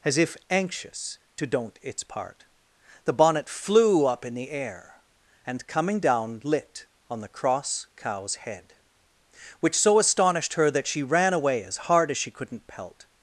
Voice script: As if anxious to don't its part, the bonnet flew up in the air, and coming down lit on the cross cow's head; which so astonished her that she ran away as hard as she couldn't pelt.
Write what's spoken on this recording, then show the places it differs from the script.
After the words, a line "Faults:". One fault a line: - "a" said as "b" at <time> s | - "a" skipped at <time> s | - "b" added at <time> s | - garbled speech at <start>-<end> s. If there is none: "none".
As if anxious to don't its part, the bonnet flew up in the air, and coming down lit on the cross cow's head; which so astonished her that she ran away as hard as she couldn't pelt.
Faults:
none